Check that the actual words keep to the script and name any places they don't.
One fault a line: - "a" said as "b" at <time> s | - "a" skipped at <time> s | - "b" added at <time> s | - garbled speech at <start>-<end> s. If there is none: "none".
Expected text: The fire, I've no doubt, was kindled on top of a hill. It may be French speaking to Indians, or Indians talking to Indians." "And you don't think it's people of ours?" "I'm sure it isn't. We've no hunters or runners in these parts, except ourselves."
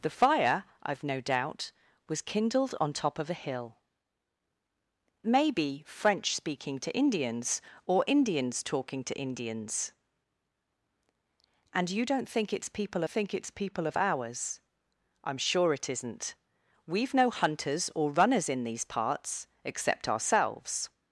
- "It" skipped at 3.8 s
- "think it's people" added at 13.1 s